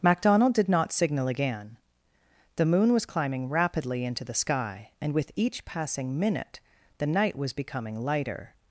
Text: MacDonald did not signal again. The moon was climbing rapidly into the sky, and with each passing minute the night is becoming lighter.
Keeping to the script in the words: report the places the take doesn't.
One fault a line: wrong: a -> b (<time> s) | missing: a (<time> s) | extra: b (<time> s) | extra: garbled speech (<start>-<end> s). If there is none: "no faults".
wrong: is -> was (7.3 s)